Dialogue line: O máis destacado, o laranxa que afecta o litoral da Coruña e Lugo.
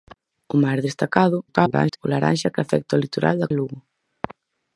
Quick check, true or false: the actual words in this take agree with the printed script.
false